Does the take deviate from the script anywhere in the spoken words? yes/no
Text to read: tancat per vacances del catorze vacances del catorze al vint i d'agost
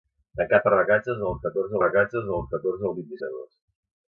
no